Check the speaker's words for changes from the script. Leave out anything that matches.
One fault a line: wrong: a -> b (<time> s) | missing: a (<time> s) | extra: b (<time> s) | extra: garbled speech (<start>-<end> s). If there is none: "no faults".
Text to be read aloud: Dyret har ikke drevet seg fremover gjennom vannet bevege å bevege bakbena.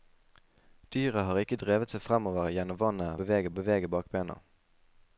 no faults